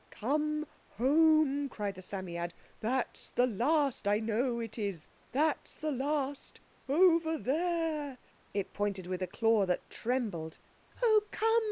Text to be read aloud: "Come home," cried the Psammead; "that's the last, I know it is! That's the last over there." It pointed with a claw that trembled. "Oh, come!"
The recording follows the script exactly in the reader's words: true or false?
true